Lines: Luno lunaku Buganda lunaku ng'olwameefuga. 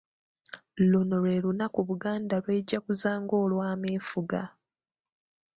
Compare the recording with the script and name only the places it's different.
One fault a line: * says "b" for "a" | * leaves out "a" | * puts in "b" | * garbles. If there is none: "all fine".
* puts in "lwe"
* says "lw'ejaguza" for "lunaku"